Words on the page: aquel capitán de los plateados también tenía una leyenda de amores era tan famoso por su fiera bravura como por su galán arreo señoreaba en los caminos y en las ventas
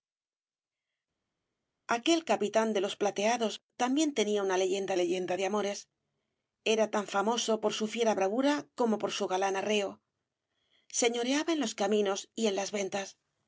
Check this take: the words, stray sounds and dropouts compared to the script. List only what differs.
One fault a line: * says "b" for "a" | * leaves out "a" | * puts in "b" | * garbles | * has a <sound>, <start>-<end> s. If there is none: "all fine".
* puts in "leyenda"